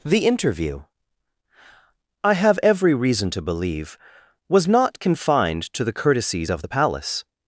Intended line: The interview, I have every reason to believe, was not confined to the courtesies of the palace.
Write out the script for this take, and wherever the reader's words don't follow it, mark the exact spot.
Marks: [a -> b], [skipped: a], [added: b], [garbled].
The interview, I have every reason to believe, was not confined to the courtesies of the palace.